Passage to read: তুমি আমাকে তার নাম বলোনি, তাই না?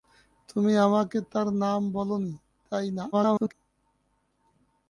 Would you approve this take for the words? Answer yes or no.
no